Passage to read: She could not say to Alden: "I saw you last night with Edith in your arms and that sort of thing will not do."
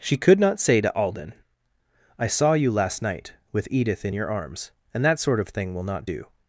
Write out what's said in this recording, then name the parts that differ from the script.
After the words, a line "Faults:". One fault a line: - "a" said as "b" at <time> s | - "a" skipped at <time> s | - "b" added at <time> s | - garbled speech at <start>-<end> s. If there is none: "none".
She could not say to Alden: "I saw you last night with Edith in your arms and that sort of thing will not do."
Faults:
none